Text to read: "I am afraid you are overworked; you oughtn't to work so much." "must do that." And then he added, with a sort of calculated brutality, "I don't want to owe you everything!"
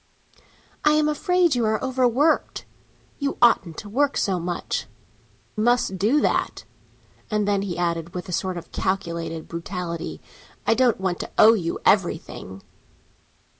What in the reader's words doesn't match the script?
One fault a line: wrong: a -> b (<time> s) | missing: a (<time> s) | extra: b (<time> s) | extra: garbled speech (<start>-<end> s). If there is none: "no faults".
no faults